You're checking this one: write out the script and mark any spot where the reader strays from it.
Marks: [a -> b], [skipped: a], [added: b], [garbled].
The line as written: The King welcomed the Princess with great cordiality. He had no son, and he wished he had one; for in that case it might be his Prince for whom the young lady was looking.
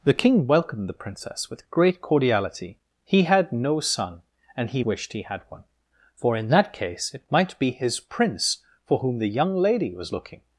The King welcomed the Princess with great cordiality. He had no son, and he wished he had one; for in that case it might be his Prince for whom the young lady was looking.